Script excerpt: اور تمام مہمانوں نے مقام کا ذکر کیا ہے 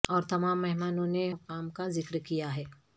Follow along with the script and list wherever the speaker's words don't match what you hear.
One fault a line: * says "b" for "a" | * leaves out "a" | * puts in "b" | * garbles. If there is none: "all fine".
all fine